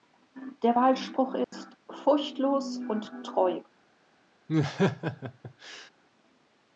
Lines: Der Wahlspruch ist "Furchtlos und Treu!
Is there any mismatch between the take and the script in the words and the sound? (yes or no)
yes